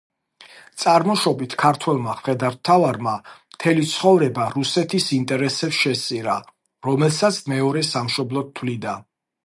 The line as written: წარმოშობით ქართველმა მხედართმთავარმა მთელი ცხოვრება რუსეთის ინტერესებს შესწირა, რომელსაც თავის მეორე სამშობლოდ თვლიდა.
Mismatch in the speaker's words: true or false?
true